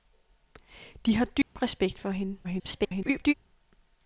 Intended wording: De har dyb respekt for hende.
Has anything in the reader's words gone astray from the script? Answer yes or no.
yes